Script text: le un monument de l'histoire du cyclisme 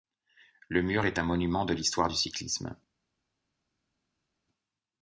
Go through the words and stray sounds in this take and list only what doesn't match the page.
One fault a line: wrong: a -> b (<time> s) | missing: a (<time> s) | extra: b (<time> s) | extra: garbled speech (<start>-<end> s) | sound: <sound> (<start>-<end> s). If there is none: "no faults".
extra: mur est (0.8 s)